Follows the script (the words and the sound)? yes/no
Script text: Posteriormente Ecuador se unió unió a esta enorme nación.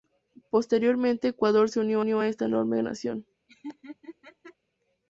no